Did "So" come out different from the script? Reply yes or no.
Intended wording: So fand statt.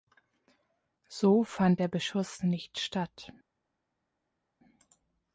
no